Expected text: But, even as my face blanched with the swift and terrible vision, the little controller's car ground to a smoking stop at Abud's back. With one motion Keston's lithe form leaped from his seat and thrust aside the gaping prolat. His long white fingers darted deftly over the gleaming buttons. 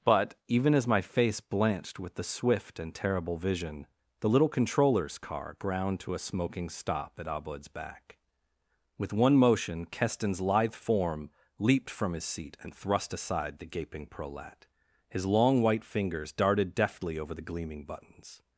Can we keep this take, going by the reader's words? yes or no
yes